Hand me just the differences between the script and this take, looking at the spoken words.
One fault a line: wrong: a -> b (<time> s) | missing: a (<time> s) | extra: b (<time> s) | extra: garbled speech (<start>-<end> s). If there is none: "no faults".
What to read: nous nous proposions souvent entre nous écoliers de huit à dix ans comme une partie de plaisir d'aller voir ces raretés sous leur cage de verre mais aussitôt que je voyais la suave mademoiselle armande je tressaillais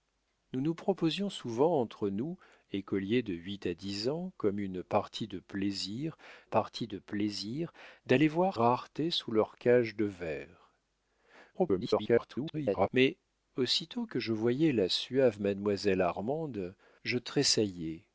extra: partie de plaisir (6.4 s)
missing: ces (8.6 s)
extra: garbled speech (11.5-12.9 s)